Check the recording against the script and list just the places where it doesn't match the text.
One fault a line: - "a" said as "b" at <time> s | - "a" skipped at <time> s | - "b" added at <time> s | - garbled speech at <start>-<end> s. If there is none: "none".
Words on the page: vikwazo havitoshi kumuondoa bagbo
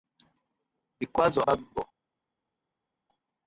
- "havitoshi kumuondoa" skipped at 1.4 s